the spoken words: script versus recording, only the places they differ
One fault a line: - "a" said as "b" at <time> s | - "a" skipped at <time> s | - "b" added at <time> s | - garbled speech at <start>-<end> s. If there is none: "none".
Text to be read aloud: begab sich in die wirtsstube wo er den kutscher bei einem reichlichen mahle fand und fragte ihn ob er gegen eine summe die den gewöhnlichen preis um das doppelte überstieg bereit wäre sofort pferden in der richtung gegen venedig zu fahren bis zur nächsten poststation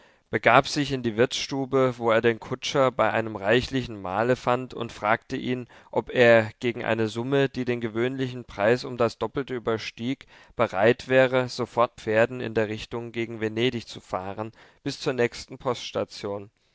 none